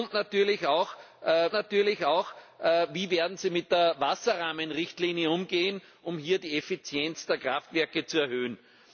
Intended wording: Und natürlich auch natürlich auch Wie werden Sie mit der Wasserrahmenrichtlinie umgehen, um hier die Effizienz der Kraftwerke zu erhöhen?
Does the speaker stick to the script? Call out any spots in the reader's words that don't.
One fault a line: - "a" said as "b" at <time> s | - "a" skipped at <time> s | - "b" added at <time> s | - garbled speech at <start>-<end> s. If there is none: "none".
none